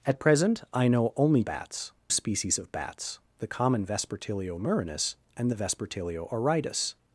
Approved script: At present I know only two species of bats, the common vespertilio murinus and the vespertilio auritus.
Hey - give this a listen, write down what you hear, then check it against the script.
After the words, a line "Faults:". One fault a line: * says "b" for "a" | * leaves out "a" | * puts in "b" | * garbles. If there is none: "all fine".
At present I know only bats species of bats, the common vespertilio murinus and the vespertilio auritus.
Faults:
* says "bats" for "two"